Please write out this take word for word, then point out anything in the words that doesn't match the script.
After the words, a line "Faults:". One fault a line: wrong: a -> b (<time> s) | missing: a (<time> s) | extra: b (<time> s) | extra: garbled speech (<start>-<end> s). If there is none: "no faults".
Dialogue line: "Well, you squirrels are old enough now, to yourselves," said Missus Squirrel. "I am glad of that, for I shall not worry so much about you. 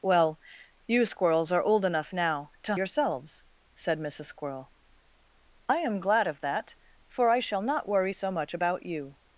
"Well, you squirrels are old enough now, to yourselves," said Missus Squirrel. "I am glad of that, for I shall not worry so much about you.
Faults:
no faults